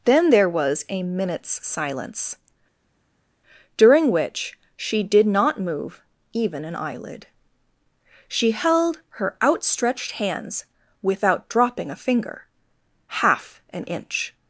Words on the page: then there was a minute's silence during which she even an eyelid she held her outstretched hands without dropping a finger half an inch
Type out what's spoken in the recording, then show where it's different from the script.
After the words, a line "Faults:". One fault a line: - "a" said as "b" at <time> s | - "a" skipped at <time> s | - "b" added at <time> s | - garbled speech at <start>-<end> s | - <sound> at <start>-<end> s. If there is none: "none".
then there was a minute's silence during which she did not move even an eyelid she held her outstretched hands without dropping a finger half an inch
Faults:
- "did not move" added at 5.0 s